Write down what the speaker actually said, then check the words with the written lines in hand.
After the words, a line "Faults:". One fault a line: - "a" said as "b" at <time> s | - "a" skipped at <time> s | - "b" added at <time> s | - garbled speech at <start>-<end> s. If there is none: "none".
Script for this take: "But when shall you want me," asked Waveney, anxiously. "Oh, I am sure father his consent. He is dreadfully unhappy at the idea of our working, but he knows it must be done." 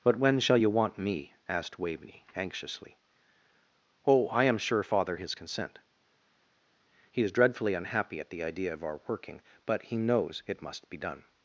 "But when shall you want me," asked Waveney, anxiously. "Oh, I am sure father his consent. He is dreadfully unhappy at the idea of our working, but he knows it must be done."
Faults:
none